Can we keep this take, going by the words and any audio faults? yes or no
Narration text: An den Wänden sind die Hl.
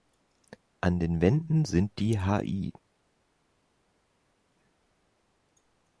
yes